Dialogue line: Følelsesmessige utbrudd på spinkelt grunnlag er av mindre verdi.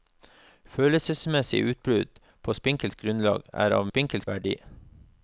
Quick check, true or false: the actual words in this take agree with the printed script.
false